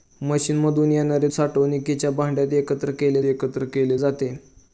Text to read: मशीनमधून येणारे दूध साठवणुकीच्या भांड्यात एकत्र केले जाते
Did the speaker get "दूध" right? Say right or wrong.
wrong